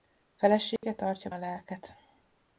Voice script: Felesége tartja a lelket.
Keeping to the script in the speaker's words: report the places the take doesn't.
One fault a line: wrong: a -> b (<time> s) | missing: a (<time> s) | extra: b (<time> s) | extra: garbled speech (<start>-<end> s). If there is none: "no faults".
no faults